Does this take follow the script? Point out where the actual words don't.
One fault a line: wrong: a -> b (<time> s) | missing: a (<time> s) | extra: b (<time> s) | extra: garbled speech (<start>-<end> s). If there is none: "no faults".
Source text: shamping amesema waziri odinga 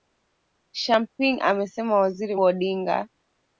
no faults